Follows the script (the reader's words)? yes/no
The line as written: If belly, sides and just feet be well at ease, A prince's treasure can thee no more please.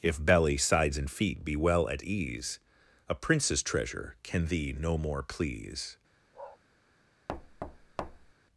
no